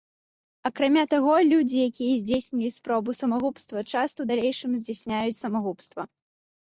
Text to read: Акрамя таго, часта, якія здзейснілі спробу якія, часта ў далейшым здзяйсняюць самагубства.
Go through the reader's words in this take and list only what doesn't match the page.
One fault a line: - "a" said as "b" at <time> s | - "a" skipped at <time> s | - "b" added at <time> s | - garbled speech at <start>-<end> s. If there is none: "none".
- "часта" said as "людзі" at 1.5 s
- "якія" said as "самагубства" at 3.2 s